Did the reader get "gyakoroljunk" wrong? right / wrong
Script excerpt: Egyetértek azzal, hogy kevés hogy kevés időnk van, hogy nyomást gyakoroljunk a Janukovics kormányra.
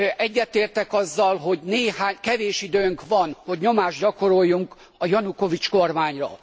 right